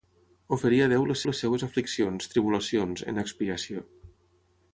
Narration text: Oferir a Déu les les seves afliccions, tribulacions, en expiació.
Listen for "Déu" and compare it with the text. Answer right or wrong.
right